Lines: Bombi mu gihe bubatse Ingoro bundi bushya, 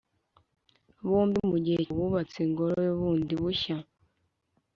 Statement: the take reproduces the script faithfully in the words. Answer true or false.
true